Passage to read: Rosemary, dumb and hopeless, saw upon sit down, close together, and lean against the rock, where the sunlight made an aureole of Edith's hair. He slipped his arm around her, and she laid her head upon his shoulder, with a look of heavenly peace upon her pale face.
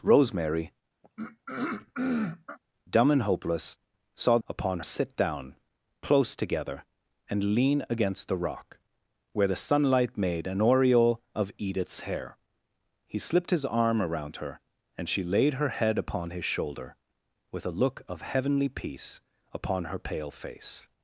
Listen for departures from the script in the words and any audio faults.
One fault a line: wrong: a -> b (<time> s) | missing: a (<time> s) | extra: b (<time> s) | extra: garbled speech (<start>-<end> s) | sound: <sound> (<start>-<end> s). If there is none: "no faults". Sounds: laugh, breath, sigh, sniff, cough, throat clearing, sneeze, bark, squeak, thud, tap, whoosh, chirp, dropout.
sound: throat clearing (1.0-2.6 s)